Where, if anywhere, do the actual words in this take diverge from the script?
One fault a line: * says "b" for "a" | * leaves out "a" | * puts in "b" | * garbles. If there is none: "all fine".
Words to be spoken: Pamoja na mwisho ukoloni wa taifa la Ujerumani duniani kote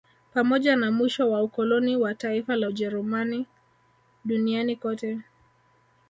* puts in "wa"